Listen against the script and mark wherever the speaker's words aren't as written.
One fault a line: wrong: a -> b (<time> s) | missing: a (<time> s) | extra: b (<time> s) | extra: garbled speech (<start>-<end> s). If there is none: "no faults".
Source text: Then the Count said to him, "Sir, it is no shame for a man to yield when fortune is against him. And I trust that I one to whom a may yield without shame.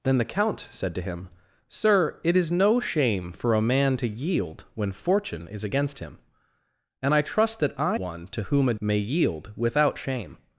no faults